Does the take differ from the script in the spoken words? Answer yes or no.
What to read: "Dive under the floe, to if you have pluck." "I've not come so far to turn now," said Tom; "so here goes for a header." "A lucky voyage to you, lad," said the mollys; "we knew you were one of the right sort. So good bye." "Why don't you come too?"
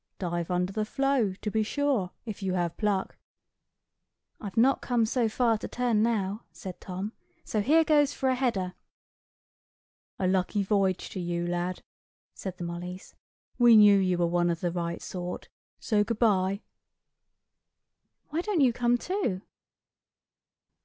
yes